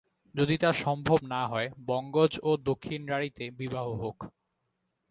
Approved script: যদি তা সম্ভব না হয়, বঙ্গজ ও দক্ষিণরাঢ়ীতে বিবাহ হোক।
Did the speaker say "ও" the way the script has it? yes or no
yes